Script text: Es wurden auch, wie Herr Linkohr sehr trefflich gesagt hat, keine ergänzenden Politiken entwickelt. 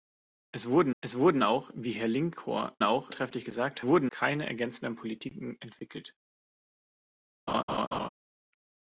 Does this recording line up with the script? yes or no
no